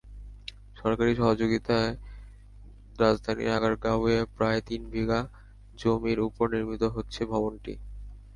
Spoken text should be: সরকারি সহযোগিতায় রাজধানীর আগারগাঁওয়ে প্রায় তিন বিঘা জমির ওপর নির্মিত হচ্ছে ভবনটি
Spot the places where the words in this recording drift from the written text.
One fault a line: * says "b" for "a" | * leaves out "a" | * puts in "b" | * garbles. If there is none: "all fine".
all fine